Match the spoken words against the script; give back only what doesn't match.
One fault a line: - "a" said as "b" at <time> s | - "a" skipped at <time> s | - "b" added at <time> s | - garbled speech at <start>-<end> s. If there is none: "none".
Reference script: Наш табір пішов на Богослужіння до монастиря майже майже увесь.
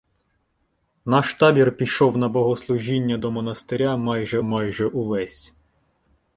none